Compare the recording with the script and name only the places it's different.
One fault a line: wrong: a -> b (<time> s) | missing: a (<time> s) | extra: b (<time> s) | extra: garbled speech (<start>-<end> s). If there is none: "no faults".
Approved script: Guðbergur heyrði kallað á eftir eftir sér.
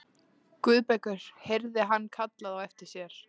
extra: hann (1.9 s)
missing: eftir (2.9 s)